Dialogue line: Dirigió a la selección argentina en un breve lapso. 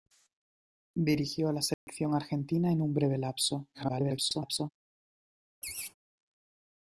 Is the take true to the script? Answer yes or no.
no